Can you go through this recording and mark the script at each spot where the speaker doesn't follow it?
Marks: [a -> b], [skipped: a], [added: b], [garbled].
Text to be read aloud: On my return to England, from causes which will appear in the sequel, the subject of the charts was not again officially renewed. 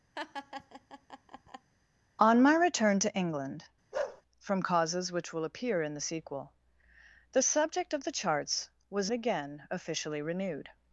On my return to England, from causes which will appear in the sequel, the subject of the charts was [skipped: not] again officially renewed.